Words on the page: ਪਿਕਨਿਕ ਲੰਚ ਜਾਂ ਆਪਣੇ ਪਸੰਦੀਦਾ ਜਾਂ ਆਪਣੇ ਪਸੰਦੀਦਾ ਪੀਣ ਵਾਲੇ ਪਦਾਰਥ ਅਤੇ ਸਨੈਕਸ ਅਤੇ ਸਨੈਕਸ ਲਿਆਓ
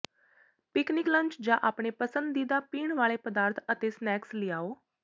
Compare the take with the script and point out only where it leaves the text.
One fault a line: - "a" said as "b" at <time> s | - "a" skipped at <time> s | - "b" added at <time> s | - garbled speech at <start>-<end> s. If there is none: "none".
- "ਜਾਂ ਆਪਣੇ ਪਸੰਦੀਦਾ" skipped at 2.6 s
- "ਅਤੇ ਸਨੈਕਸ" skipped at 4.3 s